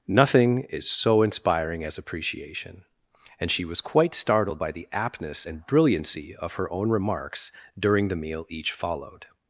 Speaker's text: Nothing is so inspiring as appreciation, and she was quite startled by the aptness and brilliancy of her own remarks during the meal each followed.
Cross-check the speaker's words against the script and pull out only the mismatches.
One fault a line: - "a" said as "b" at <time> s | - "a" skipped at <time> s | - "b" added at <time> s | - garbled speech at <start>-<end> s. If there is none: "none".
none